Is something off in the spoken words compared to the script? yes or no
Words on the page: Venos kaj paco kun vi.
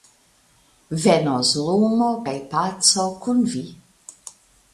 yes